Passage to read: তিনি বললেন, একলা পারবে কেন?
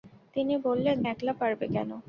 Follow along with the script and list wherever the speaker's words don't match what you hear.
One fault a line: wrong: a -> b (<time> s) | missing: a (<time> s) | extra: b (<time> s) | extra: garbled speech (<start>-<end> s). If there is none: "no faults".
no faults